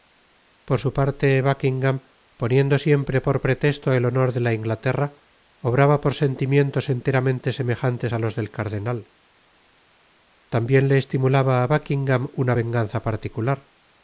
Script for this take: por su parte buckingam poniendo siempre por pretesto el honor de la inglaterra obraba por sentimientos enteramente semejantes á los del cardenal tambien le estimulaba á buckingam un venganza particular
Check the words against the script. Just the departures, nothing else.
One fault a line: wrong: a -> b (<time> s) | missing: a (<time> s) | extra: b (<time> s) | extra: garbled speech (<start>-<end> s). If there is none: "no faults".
wrong: un -> una (12.4 s)